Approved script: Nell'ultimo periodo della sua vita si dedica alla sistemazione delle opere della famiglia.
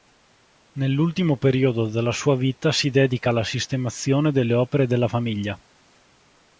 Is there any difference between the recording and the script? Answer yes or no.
no